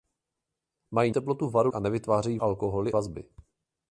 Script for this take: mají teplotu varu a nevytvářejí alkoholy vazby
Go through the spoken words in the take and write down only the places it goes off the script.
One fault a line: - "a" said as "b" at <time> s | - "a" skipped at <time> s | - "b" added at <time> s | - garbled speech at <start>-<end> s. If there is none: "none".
none